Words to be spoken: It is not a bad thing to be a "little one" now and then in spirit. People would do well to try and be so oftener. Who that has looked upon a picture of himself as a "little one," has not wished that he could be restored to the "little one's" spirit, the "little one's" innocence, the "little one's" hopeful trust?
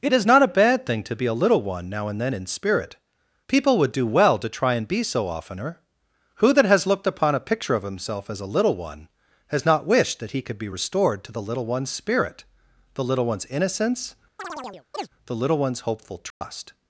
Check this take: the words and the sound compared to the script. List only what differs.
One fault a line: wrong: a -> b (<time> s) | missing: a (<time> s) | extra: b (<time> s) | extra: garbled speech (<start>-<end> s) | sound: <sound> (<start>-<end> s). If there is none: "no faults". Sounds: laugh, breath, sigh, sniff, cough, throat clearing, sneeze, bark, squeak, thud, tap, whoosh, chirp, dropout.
sound: chirp (14.4-15.1 s)
sound: dropout (16.3-16.4 s)